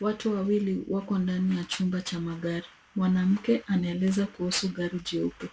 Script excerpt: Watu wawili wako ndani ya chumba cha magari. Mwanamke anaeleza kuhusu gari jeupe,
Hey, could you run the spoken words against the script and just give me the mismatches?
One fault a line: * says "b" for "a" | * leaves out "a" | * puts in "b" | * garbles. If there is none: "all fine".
all fine